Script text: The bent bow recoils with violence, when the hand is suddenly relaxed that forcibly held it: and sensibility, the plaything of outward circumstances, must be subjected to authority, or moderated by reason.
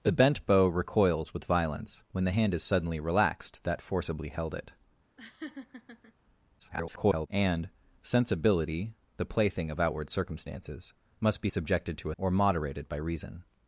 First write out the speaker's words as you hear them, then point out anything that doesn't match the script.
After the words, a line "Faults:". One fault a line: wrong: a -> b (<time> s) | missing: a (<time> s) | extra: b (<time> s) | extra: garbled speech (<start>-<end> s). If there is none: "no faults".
The bent bow recoils with violence, when the hand is suddenly relaxed that forcibly held it: [garbled] and sensibility, the plaything of outward circumstances, must be subjected to or moderated by reason.
Faults:
extra: garbled speech (6.6-7.3 s)
missing: authority (12.1 s)